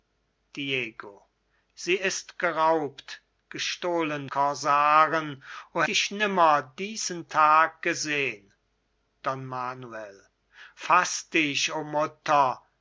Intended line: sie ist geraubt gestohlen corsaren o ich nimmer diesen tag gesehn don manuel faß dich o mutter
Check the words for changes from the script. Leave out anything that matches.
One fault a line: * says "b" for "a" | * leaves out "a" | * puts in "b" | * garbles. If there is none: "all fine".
all fine